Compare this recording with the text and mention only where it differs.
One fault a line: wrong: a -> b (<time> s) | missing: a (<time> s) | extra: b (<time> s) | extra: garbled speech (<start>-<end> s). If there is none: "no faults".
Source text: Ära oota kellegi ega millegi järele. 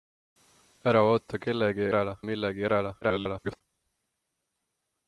wrong: ega -> järele (1.9 s)
extra: garbled speech (3.0-3.6 s)